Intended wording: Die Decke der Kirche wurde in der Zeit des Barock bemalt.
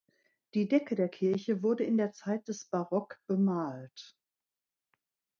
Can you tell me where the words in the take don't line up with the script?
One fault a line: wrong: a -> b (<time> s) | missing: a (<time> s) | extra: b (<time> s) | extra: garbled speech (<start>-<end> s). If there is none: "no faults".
no faults